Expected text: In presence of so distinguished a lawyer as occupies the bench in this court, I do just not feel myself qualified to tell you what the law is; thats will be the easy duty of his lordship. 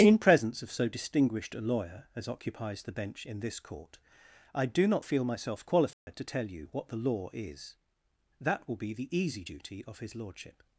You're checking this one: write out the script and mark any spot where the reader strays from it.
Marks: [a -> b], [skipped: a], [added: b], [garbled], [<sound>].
In presence of so distinguished a lawyer as occupies the bench in this court, I do [skipped: just] not feel myself qualified [dropout] to tell you what the law is; [thats -> that] will be the easy duty of his lordship.